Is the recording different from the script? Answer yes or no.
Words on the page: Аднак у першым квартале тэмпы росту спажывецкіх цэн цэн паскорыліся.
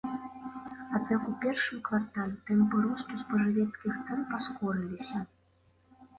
yes